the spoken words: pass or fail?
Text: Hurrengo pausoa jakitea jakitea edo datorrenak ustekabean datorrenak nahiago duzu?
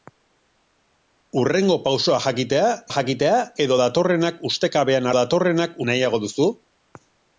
pass